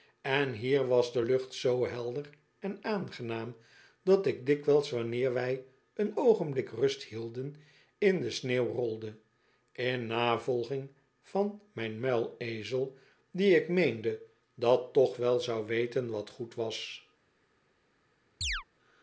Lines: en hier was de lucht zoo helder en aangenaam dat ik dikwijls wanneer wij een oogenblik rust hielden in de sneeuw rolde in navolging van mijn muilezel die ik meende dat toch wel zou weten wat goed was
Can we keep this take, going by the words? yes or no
yes